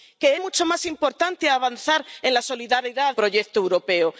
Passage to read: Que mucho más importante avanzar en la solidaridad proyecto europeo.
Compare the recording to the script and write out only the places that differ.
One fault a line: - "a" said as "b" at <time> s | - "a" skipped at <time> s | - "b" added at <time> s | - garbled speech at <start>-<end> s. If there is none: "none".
none